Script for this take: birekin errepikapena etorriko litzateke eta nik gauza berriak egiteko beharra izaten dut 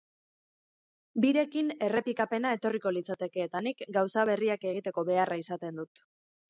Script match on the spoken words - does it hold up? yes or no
yes